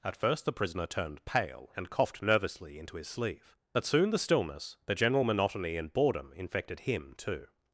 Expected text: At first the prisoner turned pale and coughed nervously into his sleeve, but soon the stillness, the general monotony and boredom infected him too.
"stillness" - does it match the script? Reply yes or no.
yes